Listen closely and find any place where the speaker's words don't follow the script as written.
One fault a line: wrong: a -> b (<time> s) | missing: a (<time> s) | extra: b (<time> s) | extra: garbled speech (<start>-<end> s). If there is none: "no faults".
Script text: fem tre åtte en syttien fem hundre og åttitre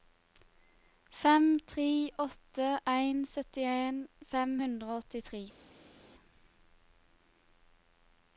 no faults